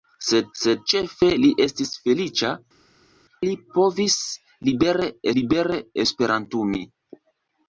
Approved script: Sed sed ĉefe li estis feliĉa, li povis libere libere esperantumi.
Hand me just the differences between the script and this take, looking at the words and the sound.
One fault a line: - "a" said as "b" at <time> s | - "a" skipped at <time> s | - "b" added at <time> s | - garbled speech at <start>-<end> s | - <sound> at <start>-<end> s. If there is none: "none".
none